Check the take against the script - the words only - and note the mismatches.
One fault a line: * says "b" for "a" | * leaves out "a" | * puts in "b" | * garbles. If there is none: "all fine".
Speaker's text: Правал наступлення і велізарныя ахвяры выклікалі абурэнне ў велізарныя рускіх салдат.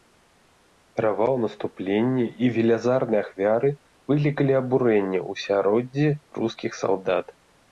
* says "асяроддзі" for "велізарныя"